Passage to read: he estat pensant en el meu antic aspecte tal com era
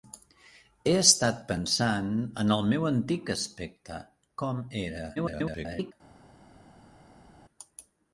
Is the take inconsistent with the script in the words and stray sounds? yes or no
yes